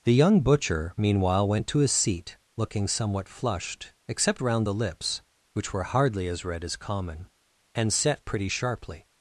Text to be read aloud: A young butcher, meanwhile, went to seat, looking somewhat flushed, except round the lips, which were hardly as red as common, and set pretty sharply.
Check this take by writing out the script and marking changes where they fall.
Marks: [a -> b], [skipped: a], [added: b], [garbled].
[A -> The] young butcher, meanwhile, went to [added: his] seat, looking somewhat flushed, except round the lips, which were hardly as red as common, and set pretty sharply.